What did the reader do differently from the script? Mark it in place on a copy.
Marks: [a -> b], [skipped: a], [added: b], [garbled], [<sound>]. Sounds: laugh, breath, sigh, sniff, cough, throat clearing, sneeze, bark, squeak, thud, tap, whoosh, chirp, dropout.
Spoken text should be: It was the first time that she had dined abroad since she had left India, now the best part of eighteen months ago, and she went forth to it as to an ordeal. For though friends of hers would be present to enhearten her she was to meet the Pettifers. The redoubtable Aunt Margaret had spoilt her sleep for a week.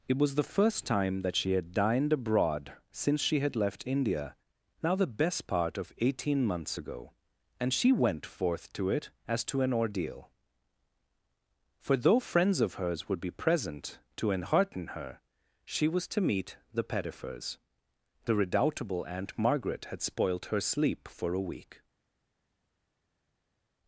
It was the first time that she had dined abroad since she had left India, now the best part of eighteen months ago, and she went forth to it as to an ordeal. For though friends of hers would be present to enhearten her she was to meet the Pettifers. The redoubtable Aunt Margaret had spoilt her sleep for a week.